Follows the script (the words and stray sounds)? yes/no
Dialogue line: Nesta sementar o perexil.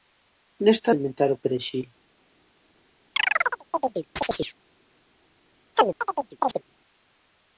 no